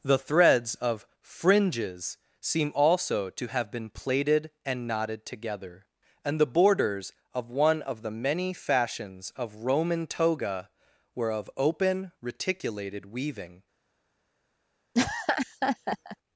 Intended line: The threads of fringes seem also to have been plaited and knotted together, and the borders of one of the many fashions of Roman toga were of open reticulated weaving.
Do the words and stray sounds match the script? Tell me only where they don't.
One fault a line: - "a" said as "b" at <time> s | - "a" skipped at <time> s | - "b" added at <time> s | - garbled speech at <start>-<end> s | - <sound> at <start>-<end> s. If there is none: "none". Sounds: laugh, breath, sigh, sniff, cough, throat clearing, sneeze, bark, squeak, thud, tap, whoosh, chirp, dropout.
- laugh at 14.9-16.2 s